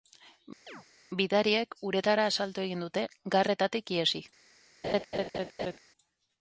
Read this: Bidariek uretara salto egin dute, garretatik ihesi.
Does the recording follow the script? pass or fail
pass